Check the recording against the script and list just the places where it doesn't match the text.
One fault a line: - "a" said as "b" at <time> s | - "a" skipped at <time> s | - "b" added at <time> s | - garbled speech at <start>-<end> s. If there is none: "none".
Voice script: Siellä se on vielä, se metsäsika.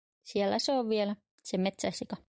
none